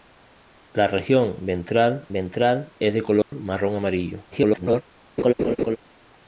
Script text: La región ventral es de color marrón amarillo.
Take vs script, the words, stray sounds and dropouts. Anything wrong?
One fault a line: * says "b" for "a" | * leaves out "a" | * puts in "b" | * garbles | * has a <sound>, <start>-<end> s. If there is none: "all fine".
* puts in "ventral"
* has a dropout, 3.2-3.3 s
* garbles
* has a laugh, 5.2-5.8 s